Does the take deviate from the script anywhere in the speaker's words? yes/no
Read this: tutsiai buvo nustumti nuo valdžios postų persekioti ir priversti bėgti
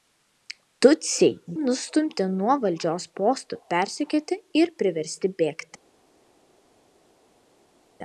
yes